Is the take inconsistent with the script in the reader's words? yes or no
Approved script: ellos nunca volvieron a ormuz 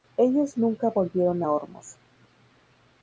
no